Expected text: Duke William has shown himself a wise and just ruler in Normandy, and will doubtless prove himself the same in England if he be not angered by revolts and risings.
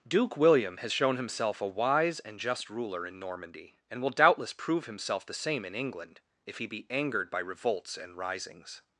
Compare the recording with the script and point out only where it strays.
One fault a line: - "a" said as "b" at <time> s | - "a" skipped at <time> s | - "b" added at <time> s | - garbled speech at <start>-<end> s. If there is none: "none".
- "not" skipped at 6.9 s